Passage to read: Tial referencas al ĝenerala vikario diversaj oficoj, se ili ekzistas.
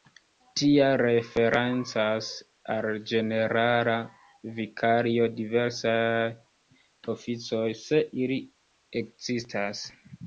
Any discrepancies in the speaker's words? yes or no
no